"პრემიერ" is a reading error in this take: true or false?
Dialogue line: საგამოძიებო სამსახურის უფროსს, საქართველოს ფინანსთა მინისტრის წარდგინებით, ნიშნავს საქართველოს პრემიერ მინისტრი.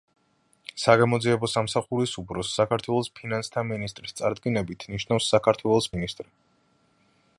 true